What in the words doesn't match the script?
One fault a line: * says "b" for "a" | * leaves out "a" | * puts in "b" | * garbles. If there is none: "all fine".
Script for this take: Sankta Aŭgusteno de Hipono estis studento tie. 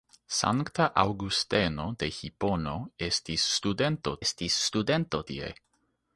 * puts in "estis studento"